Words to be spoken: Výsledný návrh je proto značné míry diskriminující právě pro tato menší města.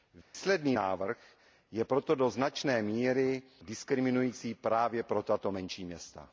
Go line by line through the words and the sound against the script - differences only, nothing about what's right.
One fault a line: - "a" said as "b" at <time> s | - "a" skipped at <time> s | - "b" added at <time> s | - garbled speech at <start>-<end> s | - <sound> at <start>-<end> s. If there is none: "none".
- dropout at 0.2-0.3 s
- "do" added at 2.1 s